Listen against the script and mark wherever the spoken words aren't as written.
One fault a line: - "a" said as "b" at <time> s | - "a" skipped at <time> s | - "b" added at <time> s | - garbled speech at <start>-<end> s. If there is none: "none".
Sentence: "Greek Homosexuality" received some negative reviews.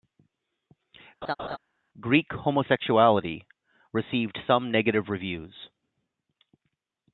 none